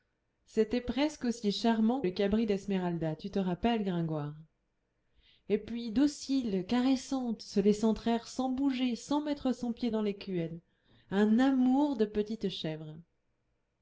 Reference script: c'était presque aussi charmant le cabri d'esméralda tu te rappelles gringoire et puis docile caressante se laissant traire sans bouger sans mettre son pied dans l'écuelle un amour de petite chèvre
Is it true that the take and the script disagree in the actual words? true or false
false